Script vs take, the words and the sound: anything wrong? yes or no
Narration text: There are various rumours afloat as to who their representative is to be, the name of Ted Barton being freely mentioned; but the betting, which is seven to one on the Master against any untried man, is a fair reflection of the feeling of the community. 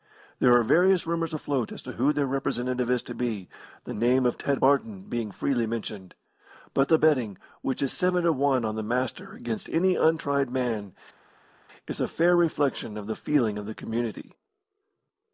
no